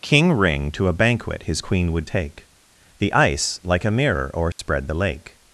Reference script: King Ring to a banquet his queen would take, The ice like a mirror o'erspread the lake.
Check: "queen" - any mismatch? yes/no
no